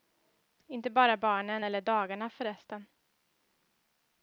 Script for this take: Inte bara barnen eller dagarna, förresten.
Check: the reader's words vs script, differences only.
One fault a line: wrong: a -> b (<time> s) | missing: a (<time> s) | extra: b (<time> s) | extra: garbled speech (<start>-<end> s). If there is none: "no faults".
no faults